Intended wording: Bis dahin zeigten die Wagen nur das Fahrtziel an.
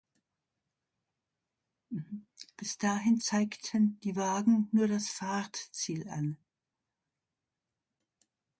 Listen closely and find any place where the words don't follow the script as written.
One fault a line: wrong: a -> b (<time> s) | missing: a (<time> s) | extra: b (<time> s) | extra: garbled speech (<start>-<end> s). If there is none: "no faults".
no faults